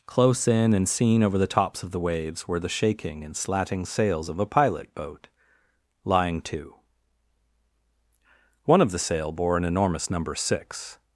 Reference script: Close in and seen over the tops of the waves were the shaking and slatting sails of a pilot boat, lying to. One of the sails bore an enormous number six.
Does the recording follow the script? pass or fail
fail